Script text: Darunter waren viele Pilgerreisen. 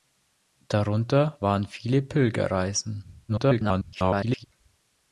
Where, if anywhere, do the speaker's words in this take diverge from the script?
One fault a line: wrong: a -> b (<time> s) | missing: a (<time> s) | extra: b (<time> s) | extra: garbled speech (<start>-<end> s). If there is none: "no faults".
extra: garbled speech (3.3-4.4 s)